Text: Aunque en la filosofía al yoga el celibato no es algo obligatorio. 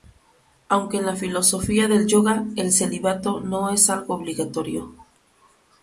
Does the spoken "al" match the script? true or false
false